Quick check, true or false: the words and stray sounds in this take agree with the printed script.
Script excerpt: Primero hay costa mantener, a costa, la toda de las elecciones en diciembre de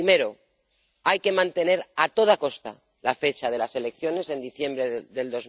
false